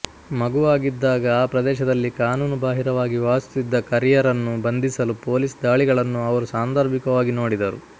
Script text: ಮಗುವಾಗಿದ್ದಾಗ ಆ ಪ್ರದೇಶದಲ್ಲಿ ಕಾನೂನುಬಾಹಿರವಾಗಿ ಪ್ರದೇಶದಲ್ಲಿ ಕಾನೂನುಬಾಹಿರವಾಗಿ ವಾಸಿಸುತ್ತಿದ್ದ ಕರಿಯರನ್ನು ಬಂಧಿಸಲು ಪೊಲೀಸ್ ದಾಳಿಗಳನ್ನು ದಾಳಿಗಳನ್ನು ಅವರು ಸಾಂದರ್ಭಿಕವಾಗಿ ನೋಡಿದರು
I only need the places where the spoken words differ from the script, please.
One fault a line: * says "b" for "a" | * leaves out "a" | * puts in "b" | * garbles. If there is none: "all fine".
* leaves out "ಪ್ರದೇಶದಲ್ಲಿ ಕಾನೂನುಬಾಹಿರವಾಗಿ"
* leaves out "ದಾಳಿಗಳನ್ನು"